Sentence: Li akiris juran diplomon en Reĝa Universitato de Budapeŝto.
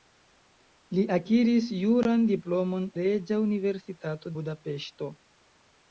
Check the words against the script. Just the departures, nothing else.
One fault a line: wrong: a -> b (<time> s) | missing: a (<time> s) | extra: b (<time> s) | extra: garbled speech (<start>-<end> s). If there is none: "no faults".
missing: en (2.9 s)
missing: de (4.4 s)